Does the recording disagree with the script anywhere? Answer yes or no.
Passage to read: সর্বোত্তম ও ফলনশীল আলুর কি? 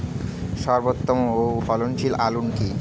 no